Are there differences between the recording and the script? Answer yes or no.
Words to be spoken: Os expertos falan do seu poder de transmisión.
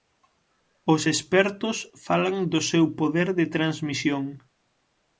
no